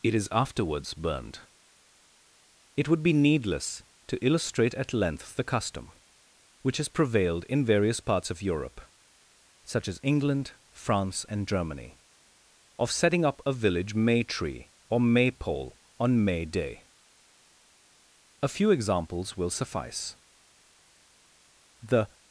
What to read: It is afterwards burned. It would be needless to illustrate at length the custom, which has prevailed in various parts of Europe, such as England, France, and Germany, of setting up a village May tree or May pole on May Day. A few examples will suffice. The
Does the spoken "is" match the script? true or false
true